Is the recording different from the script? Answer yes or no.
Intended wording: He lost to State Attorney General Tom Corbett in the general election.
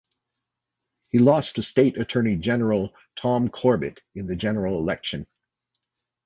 no